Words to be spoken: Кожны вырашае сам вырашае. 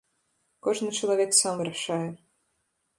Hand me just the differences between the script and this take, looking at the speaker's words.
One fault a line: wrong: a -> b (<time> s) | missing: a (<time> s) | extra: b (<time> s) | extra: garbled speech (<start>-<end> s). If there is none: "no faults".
wrong: вырашае -> чалавек (1.0 s)